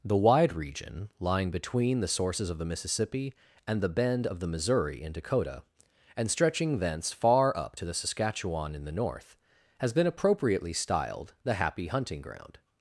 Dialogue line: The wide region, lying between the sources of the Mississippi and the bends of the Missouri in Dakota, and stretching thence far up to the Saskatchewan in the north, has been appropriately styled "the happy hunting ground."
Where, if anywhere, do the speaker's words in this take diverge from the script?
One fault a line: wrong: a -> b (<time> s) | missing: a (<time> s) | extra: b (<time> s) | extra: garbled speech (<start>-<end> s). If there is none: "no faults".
wrong: bends -> bend (3.9 s)